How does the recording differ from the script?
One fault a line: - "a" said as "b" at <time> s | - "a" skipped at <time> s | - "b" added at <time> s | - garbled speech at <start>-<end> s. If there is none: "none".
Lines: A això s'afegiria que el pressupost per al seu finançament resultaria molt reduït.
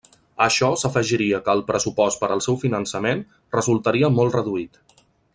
none